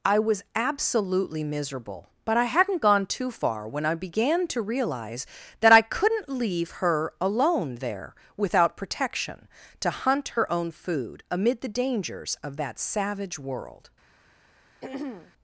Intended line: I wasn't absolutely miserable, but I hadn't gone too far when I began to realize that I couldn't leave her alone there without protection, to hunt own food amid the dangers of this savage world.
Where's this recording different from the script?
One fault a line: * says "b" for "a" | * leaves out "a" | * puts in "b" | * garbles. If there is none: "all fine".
* says "was" for "wasn't"
* puts in "her"
* says "that" for "this"